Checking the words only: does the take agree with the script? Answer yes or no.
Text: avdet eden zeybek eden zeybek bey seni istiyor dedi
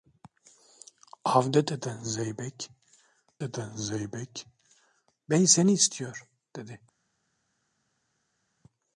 yes